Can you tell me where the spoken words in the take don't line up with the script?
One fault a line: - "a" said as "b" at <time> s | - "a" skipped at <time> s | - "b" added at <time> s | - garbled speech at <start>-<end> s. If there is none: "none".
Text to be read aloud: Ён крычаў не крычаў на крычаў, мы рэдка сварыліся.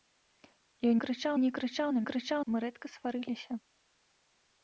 none